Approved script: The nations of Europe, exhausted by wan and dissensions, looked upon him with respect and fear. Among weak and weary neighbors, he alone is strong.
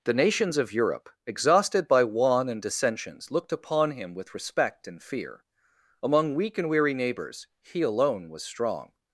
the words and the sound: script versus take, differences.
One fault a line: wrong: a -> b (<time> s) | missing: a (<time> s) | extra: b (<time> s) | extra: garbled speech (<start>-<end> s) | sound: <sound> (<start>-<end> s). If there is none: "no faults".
wrong: is -> was (8.3 s)